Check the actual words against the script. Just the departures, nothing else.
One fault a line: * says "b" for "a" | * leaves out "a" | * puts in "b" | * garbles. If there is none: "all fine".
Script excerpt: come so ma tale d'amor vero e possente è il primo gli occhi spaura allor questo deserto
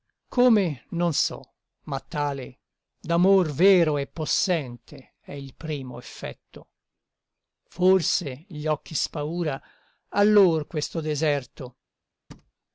* puts in "non"
* puts in "effetto forse"